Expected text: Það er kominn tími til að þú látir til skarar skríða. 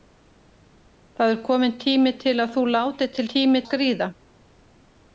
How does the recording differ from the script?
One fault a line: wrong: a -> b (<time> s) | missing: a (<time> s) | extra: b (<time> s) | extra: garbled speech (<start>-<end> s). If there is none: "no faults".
wrong: skarar -> tími (3.3 s)